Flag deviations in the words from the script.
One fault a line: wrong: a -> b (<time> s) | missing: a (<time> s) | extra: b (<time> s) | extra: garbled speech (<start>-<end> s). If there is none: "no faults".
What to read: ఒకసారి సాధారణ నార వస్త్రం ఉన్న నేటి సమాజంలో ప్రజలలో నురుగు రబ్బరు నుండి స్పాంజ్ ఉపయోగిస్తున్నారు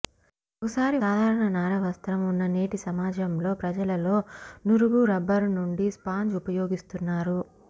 no faults